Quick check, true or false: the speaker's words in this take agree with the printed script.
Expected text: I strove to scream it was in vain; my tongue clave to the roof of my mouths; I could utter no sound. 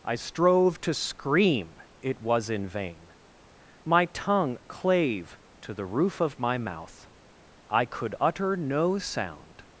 false